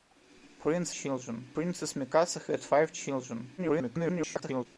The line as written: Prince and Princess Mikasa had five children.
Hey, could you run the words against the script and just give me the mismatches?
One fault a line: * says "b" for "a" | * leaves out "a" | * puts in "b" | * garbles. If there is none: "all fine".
* says "children" for "and"
* garbles